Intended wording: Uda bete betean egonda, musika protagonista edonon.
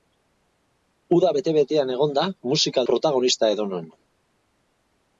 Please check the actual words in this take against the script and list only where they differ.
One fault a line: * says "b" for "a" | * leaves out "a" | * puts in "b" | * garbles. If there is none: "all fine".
all fine